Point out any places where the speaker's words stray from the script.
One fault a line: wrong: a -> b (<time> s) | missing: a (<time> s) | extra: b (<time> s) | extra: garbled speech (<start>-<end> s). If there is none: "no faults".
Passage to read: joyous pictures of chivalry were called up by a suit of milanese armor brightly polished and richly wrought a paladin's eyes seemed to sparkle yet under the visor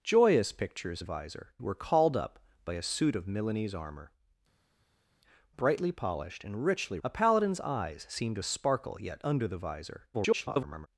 wrong: chivalry -> visor (1.0 s)
missing: wrought (7.0 s)
extra: garbled speech (10.1-10.9 s)